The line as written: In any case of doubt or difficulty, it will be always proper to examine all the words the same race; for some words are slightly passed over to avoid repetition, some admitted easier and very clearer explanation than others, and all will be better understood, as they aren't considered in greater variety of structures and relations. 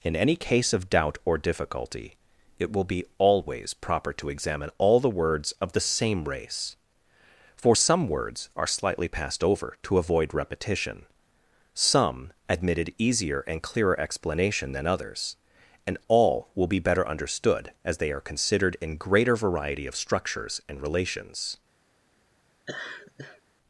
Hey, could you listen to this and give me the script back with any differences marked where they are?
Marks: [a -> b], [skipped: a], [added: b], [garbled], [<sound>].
In any case of doubt or difficulty, it will be always proper to examine all the words [added: of] the same race; for some words are slightly passed over to avoid repetition, some admitted easier and [skipped: very] clearer explanation than others, and all will be better understood, as they [aren't -> are] considered in greater variety of structures and relations. [laugh]